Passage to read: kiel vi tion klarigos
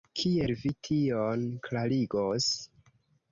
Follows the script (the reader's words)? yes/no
yes